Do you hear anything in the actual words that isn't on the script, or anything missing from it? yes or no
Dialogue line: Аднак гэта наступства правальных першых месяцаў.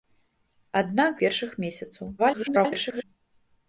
yes